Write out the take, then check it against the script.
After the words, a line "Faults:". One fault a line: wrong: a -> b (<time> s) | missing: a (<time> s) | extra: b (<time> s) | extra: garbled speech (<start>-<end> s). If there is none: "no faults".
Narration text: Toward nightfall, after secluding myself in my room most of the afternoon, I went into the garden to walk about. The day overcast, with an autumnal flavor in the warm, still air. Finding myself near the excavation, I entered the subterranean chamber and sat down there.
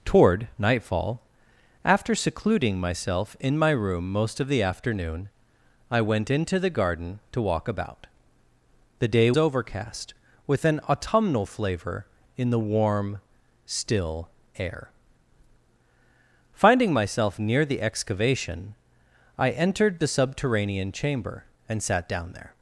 Toward nightfall, after secluding myself in my room most of the afternoon, I went into the garden to walk about. The day overcast, with an autumnal flavor in the warm, still air. Finding myself near the excavation, I entered the subterranean chamber and sat down there.
Faults:
no faults